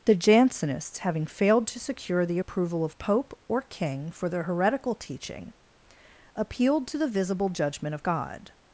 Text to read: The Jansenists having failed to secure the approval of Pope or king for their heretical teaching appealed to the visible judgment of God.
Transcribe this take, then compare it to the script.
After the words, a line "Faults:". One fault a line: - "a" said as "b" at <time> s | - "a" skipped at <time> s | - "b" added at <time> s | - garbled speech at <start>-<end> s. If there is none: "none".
The Jansenists having failed to secure the approval of Pope or king for their heretical teaching appealed to the visible judgment of God.
Faults:
none